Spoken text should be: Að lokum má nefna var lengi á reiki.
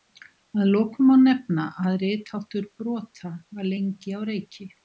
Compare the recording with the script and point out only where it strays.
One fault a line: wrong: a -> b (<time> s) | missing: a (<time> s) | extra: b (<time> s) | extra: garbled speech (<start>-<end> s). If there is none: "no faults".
extra: að ritháttur brota (1.8 s)